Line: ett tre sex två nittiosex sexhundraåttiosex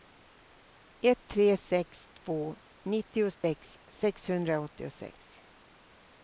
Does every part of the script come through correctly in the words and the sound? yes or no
no